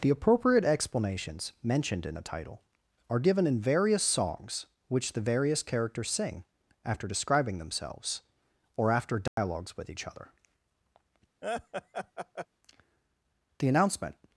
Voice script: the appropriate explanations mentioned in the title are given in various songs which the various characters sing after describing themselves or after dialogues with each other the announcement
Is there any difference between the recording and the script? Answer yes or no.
no